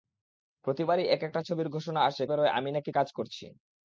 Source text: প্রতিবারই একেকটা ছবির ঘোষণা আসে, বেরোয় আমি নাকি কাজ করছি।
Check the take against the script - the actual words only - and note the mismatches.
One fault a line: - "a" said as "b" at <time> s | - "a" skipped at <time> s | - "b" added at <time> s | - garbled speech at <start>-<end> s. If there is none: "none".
none